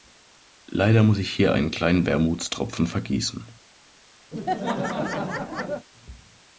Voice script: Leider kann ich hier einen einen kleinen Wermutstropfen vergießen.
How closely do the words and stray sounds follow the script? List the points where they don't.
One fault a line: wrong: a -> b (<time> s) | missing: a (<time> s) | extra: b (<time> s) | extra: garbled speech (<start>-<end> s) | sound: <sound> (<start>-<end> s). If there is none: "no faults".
wrong: kann -> muss (1.0 s)
missing: einen (1.7 s)
sound: laugh (4.3-5.9 s)